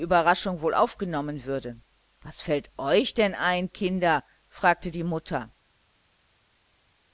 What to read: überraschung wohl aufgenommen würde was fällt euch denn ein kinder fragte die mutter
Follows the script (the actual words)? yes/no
yes